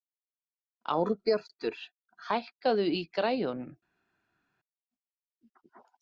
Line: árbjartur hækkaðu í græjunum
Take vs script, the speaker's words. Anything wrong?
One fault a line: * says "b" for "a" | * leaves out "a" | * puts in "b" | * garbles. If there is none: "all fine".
all fine